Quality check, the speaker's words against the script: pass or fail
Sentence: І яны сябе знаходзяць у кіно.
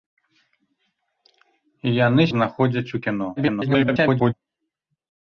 fail